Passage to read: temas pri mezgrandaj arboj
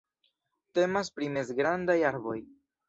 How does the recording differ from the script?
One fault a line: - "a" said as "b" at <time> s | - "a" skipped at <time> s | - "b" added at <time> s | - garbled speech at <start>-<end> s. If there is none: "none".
none